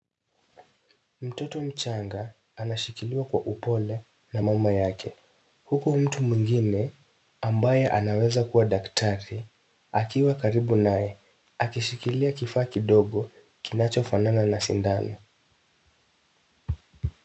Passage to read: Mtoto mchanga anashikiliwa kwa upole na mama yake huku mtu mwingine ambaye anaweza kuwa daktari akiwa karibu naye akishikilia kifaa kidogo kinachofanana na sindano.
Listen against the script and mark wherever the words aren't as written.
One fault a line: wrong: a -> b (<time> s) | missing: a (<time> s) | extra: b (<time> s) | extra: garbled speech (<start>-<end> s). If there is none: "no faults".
no faults